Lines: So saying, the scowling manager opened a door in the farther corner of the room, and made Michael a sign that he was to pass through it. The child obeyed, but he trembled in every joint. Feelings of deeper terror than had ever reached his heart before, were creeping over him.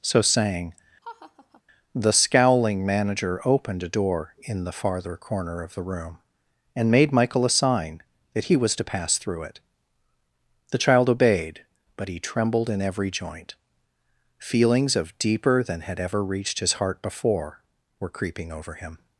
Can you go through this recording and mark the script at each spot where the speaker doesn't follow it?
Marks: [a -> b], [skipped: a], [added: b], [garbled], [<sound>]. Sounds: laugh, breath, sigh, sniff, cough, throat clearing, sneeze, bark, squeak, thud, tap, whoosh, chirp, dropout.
So saying, [laugh] the scowling manager opened a door in the farther corner of the room, and made Michael a sign that he was to pass through it. The child obeyed, but he trembled in every joint. Feelings of deeper [skipped: terror] than had ever reached his heart before, were creeping over him.